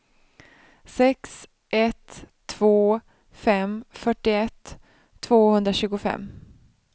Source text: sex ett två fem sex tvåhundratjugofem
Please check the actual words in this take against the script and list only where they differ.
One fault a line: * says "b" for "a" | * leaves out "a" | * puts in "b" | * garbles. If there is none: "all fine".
* says "fyrtioett" for "sex"